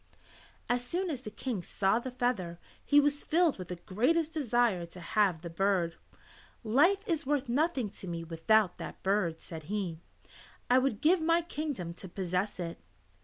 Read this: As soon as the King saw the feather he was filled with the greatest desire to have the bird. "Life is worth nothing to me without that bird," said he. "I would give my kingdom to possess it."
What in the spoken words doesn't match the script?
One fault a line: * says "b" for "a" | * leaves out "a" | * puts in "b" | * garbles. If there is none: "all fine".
all fine